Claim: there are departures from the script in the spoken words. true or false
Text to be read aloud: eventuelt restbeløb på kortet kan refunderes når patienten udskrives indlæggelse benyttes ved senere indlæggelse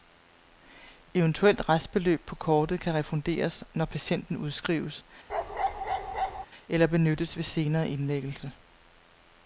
true